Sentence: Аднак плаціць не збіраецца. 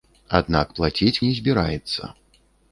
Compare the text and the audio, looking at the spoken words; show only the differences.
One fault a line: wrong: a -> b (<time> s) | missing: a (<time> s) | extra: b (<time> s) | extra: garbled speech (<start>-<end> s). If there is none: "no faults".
no faults